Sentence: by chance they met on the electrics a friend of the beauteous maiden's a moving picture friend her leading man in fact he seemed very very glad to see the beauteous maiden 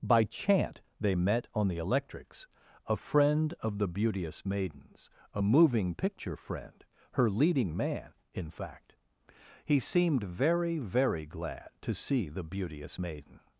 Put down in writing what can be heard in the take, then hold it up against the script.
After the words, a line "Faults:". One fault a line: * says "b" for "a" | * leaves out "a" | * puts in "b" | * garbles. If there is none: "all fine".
by chant they met on the electrics a friend of the beauteous maiden's a moving picture friend her leading man in fact he seemed very very glad to see the beauteous maiden
Faults:
* says "chant" for "chance"